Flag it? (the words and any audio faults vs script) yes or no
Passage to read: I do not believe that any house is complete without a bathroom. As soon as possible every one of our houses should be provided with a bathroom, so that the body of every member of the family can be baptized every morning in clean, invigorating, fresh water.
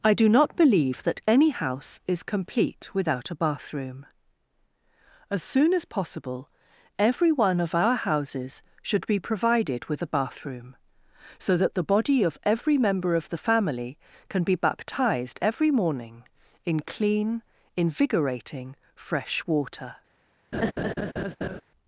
yes